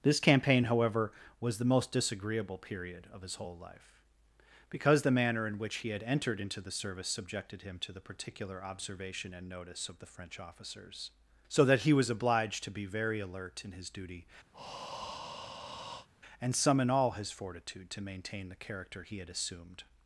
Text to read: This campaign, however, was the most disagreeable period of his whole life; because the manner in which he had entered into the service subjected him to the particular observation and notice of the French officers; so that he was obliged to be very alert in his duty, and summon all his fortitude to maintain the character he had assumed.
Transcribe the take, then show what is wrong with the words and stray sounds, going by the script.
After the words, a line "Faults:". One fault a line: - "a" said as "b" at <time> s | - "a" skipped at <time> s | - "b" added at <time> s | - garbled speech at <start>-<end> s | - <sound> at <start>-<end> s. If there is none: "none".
This campaign, however, was the most disagreeable period of his whole life; because the manner in which he had entered into the service subjected him to the particular observation and notice of the French officers; so that he was obliged to be very alert in his duty, and summon all his fortitude to maintain the character he had assumed.
Faults:
- breath at 14.5-16.1 s